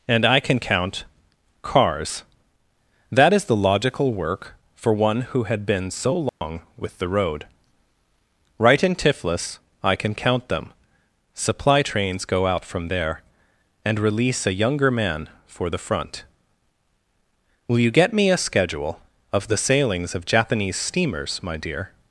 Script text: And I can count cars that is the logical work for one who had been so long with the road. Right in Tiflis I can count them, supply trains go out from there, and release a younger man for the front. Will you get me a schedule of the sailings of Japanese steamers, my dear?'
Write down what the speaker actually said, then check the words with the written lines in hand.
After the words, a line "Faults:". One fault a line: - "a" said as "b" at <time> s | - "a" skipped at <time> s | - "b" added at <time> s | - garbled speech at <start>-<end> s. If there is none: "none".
And I can count cars that is the logical work for one who had been so long with the road. Right in Tiflis I can count them, supply trains go out from there, and release a younger man for the front. Will you get me a schedule of the sailings of Japanese steamers, my dear?'
Faults:
none